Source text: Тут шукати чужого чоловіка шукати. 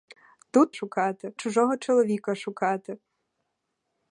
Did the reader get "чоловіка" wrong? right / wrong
right